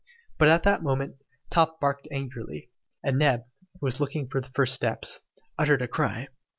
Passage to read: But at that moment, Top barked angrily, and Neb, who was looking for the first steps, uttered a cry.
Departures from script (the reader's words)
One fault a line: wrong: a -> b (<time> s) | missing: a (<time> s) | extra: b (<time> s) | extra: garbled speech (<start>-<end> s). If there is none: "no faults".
no faults